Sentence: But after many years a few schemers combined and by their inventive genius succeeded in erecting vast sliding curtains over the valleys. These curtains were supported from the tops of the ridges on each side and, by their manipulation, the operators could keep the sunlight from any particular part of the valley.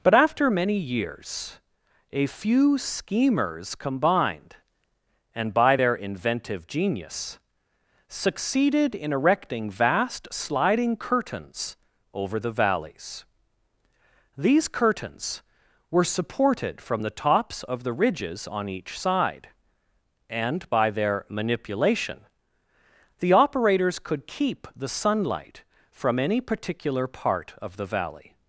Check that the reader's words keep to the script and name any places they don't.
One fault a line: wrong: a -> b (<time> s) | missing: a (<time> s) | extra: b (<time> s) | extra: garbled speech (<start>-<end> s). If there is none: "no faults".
no faults